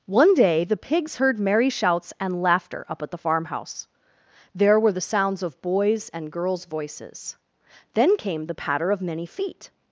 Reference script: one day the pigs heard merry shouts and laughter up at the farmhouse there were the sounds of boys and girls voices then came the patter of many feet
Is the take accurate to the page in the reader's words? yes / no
yes